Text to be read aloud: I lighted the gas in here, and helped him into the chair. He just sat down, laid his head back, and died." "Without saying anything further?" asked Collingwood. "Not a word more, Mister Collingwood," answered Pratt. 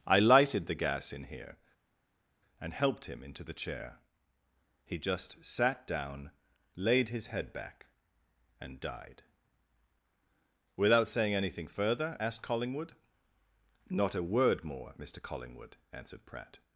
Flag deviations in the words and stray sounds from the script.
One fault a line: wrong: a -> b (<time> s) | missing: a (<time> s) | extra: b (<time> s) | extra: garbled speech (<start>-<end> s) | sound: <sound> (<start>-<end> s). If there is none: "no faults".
no faults